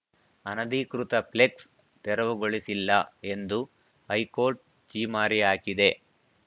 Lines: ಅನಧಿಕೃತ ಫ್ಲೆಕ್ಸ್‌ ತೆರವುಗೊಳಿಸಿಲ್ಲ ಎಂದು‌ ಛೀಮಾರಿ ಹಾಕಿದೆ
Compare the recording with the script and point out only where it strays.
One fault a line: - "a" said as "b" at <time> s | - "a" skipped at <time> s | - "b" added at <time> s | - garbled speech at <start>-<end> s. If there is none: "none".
- "ಹೈಕೋರ್ಟ್" added at 4.1 s